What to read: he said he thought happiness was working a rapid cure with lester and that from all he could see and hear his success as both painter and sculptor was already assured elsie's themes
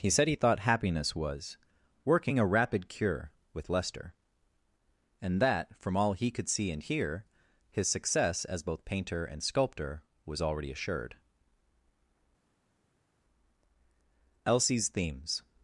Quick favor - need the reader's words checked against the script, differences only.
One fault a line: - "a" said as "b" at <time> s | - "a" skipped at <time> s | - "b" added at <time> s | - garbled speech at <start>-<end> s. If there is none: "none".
none